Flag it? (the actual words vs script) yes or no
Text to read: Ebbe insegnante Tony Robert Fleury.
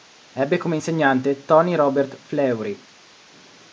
yes